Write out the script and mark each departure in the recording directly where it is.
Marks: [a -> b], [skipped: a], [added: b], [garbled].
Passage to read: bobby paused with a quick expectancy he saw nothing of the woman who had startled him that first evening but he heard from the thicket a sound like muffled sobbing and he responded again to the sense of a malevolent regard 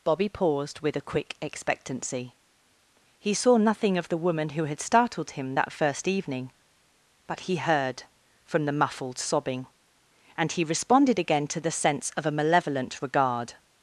bobby paused with a quick expectancy he saw nothing of the woman who had startled him that first evening but he heard from the [skipped: thicket a sound like] muffled sobbing and he responded again to the sense of a malevolent regard